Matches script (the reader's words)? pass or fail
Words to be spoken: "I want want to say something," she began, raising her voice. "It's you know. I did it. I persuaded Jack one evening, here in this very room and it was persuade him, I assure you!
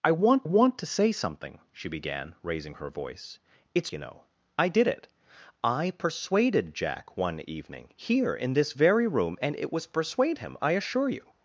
pass